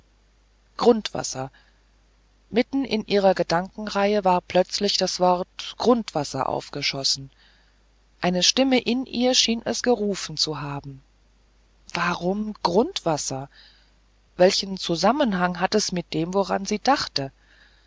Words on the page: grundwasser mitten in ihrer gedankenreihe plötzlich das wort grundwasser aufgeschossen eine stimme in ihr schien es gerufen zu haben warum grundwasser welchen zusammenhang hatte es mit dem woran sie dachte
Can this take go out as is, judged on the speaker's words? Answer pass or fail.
fail